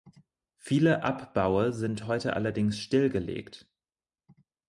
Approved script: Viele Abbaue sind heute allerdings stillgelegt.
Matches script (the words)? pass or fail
pass